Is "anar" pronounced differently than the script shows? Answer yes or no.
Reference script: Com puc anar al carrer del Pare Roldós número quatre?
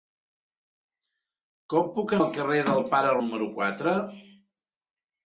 yes